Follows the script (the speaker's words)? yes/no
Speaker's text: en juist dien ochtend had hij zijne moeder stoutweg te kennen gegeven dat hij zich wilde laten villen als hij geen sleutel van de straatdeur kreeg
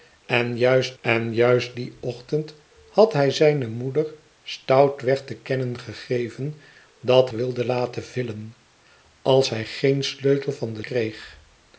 no